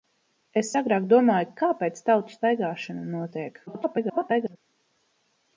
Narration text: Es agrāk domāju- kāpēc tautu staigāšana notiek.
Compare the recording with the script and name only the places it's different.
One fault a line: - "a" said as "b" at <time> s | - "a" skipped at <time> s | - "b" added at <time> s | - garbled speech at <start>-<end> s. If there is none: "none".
- garbled speech at 3.7-4.6 s